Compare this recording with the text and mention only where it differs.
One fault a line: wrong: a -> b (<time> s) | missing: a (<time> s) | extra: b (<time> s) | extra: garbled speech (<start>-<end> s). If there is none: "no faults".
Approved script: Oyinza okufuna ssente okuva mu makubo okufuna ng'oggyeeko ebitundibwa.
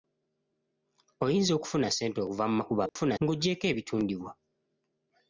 no faults